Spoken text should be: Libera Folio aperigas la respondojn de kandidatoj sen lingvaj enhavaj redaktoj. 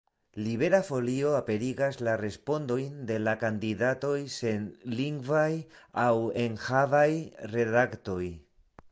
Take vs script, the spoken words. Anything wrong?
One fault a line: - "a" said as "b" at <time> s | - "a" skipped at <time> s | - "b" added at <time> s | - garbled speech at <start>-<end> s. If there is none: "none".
- "la" added at 3.2 s
- "aŭ" added at 6.0 s